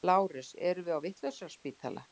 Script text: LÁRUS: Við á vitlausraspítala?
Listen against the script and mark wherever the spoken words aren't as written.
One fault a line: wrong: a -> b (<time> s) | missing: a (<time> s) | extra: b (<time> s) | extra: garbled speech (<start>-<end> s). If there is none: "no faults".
extra: Erum (0.7 s)